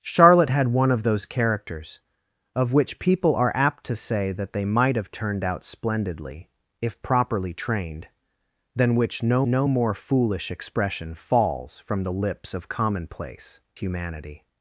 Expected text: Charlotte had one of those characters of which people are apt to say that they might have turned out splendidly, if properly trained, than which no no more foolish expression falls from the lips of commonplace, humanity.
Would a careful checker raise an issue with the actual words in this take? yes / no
no